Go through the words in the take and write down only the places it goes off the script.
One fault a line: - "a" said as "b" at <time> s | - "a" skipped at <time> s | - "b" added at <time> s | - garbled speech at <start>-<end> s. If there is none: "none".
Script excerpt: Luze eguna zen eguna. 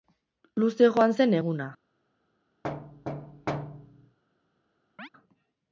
- "eguna" said as "joan" at 0.9 s